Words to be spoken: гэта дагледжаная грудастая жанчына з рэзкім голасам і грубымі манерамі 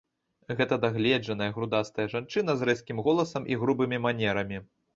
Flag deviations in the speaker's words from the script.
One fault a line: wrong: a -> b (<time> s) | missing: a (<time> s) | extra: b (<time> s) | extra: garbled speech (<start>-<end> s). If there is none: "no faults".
no faults